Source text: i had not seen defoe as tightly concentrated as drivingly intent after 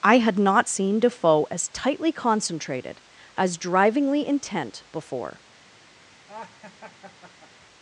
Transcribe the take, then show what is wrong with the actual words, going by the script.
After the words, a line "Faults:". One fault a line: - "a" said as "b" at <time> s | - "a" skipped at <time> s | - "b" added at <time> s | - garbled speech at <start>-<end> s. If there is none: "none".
i had not seen defoe as tightly concentrated as drivingly intent before
Faults:
- "after" said as "before" at 4.9 s